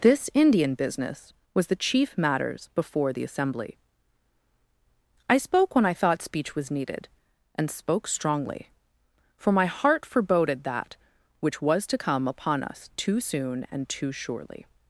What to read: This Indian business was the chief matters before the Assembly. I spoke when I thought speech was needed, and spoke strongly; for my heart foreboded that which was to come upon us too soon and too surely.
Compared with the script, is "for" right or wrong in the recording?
right